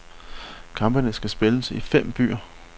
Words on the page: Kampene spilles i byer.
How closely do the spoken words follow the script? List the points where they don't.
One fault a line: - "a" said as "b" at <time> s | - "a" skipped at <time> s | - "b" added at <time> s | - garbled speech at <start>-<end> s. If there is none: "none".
- "skal" added at 1.1 s
- "fem" added at 1.8 s